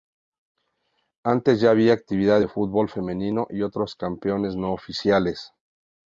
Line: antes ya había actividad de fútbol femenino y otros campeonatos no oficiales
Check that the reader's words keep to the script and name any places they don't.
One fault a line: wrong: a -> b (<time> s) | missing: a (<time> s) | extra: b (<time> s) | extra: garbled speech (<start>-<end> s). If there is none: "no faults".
no faults